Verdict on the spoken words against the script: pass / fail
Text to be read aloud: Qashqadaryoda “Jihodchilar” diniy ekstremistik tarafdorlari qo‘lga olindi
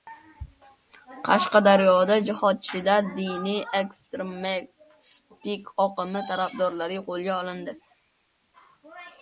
fail